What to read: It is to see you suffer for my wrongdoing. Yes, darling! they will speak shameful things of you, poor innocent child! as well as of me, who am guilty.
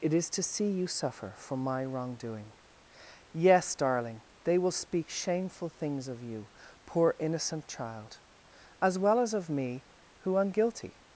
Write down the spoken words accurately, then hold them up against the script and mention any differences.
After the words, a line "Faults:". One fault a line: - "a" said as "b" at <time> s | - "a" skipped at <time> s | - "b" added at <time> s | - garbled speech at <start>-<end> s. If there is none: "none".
It is to see you suffer for my wrongdoing. Yes, darling! they will speak shameful things of you, poor innocent child! as well as of me, who am guilty.
Faults:
none